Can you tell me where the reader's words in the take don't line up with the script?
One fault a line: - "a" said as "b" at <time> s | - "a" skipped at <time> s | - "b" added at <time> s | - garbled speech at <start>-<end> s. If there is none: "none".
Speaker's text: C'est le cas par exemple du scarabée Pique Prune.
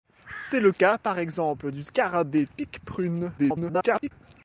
- garbled speech at 3.4-4.1 s